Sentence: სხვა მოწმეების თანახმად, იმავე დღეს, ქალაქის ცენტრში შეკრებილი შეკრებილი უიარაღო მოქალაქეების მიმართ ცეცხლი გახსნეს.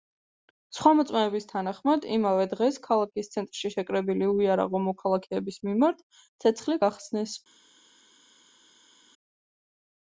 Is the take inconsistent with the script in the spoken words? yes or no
yes